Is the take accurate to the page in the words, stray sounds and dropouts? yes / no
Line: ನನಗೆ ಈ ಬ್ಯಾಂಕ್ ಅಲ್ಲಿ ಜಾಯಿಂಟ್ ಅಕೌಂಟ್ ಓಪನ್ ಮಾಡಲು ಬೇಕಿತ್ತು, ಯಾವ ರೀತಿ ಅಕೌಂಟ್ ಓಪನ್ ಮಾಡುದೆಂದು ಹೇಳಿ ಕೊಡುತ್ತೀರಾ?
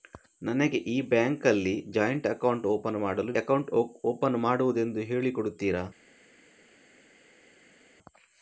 no